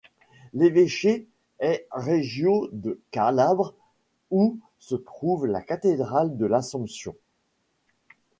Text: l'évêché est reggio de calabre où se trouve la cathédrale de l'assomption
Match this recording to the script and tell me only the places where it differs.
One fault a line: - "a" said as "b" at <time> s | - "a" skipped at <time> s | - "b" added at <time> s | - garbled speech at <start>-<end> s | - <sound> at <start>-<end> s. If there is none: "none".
none